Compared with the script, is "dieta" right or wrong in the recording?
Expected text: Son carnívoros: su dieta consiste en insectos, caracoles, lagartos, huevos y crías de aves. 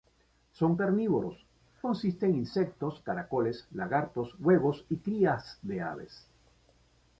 wrong